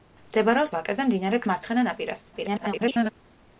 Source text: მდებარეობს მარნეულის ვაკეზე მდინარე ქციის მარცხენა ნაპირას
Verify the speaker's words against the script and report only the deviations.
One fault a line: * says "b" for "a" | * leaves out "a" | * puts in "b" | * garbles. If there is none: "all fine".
* leaves out "მარნეულის"
* leaves out "ქციის"
* garbles